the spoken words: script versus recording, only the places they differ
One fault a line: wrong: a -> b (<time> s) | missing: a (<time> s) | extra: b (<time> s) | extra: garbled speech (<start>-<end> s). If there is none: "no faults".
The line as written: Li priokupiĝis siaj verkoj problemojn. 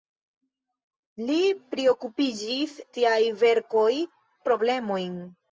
no faults